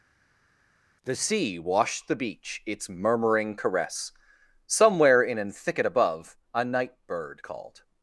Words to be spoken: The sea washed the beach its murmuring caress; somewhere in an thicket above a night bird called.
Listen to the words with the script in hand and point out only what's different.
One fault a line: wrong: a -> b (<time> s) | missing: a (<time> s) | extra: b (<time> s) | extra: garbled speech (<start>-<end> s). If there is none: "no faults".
no faults